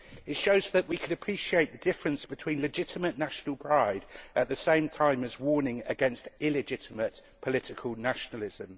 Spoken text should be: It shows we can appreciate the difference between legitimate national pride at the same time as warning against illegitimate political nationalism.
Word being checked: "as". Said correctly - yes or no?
yes